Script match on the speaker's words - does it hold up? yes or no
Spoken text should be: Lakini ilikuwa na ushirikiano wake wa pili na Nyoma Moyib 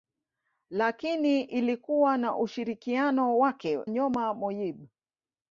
no